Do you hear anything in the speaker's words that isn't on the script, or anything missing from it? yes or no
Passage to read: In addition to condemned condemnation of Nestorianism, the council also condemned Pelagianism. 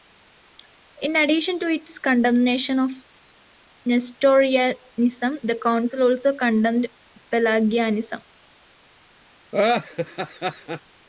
yes